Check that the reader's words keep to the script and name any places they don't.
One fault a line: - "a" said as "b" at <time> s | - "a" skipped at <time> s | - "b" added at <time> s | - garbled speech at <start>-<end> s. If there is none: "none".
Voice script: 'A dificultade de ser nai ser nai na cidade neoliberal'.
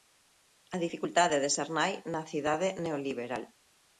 - "ser nai" skipped at 1.9 s